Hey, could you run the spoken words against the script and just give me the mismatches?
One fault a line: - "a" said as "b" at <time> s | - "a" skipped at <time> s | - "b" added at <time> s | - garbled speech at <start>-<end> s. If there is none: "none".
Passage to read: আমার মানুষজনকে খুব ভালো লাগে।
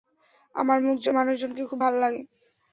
none